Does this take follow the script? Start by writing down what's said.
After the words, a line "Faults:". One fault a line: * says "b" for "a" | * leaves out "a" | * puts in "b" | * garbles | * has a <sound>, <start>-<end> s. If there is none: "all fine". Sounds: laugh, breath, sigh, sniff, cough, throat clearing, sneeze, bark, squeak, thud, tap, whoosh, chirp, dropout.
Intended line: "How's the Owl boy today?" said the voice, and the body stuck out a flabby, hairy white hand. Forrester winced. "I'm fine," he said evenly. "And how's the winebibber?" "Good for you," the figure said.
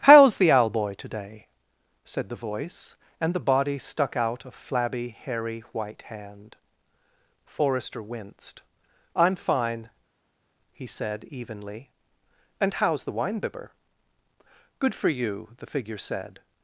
"How's the Owl boy today?" said the voice, and the body stuck out a flabby, hairy white hand. Forrester winced. "I'm fine," he said evenly. "And how's the winebibber?" "Good for you," the figure said.
Faults:
all fine